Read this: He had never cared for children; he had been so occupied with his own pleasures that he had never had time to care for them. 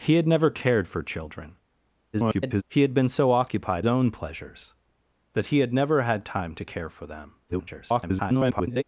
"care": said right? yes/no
yes